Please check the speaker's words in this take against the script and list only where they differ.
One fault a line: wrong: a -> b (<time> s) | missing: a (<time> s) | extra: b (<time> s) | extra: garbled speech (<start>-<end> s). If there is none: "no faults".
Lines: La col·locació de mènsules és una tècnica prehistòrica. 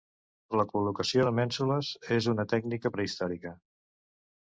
no faults